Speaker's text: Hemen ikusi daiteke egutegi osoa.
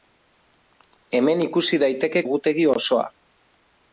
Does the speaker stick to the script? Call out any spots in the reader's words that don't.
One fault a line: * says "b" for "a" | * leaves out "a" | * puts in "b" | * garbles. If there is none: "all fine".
all fine